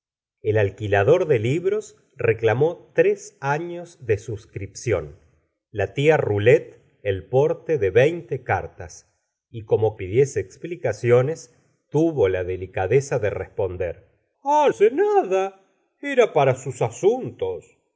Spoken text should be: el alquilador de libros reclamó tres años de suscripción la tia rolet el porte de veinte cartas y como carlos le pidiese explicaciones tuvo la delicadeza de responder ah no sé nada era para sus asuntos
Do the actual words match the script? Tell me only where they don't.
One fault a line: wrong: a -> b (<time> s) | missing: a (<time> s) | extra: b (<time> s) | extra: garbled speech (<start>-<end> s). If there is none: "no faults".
missing: carlos le (10.0 s)
missing: no (14.7 s)